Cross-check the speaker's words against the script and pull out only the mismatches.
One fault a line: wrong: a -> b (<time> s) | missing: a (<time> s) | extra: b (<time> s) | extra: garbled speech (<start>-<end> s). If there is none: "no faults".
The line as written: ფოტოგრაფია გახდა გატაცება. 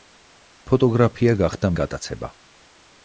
no faults